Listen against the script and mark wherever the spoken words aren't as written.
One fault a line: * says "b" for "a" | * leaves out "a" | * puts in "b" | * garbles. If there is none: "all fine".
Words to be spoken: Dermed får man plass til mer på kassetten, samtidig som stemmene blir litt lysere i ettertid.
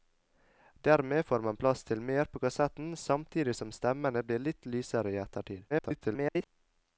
* garbles